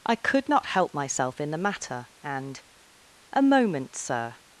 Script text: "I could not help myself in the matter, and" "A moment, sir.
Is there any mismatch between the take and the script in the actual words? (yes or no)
no